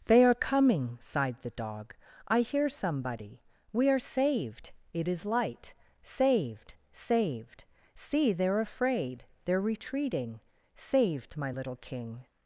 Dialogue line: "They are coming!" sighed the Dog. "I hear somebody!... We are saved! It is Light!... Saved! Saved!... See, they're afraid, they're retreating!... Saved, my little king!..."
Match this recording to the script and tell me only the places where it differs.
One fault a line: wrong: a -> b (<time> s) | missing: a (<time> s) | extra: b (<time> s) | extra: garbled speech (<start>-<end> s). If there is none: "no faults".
no faults